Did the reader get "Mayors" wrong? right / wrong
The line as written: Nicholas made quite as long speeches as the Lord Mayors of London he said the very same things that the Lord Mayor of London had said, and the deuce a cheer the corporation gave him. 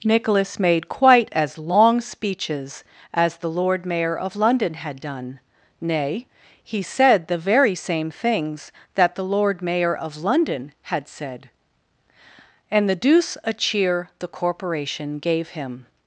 wrong